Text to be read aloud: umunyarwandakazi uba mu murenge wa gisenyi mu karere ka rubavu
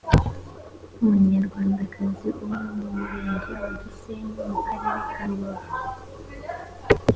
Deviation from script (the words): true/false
false